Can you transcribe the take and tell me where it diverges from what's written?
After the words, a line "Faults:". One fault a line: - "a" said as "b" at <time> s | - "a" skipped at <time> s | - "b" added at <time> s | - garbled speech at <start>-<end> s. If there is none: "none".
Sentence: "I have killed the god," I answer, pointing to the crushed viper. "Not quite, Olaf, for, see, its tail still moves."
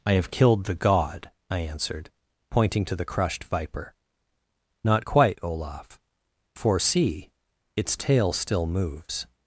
"I have killed the god," I answered, pointing to the crushed viper. "Not quite, Olaf, for, see, its tail still moves."
Faults:
- "answer" said as "answered" at 1.6 s